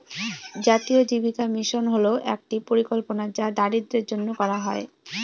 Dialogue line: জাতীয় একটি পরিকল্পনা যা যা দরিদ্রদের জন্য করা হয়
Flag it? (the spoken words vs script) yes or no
yes